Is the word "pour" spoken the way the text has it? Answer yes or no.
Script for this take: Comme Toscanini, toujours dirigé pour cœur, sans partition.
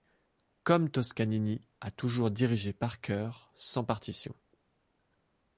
no